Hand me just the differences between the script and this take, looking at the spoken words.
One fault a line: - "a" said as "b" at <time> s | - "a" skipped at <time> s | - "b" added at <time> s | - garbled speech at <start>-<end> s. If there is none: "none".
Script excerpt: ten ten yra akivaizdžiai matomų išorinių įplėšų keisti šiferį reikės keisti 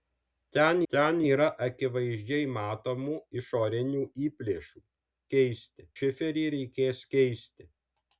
none